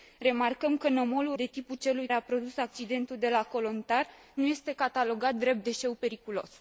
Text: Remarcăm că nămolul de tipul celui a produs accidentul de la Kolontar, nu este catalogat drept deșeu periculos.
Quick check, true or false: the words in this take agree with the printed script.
true